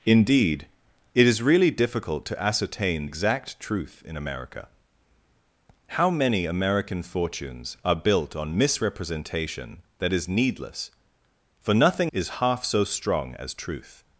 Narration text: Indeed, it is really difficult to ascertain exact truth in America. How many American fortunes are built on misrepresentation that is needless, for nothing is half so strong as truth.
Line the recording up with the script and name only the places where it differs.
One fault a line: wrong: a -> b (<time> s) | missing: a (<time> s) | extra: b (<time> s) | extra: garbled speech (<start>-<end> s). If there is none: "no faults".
no faults